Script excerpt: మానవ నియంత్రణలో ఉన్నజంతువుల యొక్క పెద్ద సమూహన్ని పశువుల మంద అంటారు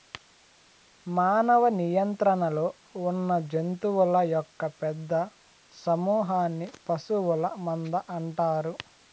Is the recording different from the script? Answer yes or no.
no